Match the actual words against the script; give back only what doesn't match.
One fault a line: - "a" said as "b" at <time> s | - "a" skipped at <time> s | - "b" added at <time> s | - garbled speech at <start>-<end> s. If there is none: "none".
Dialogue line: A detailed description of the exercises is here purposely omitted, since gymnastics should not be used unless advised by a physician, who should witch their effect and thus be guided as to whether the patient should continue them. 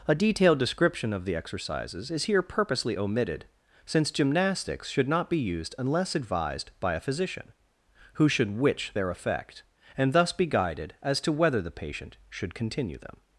none